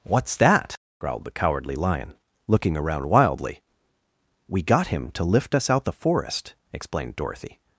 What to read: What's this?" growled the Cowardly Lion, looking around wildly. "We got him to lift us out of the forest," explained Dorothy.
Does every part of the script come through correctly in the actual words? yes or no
no